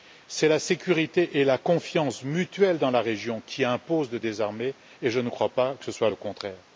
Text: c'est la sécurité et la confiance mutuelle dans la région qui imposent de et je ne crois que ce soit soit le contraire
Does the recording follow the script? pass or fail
fail